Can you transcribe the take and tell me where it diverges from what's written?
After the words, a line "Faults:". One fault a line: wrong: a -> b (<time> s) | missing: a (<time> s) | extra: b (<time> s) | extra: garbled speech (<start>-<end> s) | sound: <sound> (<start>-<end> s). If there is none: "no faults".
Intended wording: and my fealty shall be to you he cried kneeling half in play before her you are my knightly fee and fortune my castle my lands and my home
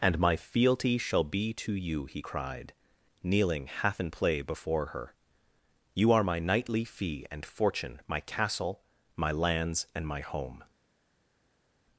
and my fealty shall be to you he cried kneeling half in play before her you are my knightly fee and fortune my castle my lands and my home
Faults:
no faults